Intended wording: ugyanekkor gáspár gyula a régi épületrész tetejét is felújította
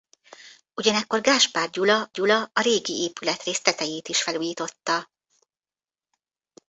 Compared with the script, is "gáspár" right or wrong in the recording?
right